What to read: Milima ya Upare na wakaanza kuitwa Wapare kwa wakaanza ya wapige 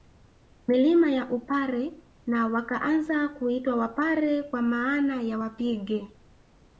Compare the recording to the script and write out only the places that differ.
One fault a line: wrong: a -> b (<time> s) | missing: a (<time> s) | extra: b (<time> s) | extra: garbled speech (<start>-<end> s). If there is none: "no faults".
wrong: wakaanza -> maana (4.6 s)